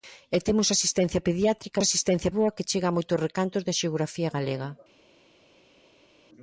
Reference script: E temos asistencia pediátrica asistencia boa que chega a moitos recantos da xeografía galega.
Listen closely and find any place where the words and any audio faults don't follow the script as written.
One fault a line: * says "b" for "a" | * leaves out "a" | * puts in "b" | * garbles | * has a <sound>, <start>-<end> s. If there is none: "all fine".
all fine